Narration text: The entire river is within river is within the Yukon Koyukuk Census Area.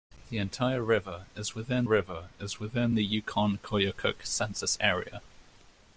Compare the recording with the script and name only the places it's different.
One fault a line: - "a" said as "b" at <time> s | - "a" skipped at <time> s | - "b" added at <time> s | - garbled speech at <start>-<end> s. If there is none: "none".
none